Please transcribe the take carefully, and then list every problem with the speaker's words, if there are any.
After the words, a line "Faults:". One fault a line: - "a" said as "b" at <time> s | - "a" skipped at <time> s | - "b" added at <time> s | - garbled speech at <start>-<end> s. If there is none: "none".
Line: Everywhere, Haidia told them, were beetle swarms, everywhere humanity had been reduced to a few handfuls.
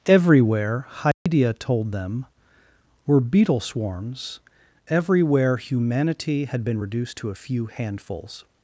Everywhere, Haidia told them, were beetle swarms, everywhere humanity had been reduced to a few handfuls.
Faults:
none